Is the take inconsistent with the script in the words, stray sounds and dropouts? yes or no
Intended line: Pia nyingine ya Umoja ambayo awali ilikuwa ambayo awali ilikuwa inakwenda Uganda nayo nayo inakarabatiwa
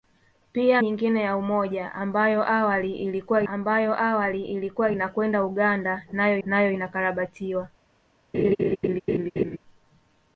yes